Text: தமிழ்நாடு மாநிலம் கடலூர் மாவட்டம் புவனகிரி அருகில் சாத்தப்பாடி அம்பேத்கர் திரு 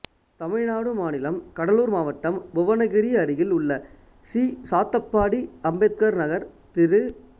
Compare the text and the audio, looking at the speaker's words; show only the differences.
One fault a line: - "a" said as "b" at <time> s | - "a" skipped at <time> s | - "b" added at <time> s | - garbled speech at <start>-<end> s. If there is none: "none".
- "உள்ள சி" added at 3.5 s
- "நகர்" added at 6.2 s